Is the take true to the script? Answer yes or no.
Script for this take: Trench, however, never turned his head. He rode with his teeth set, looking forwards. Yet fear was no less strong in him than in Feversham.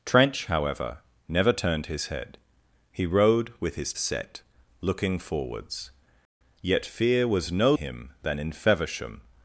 no